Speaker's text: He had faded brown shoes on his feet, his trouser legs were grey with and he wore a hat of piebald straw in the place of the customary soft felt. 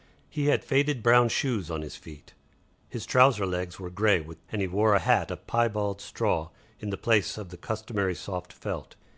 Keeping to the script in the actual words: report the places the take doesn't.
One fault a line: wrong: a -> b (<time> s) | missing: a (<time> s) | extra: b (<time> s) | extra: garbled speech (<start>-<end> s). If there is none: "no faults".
no faults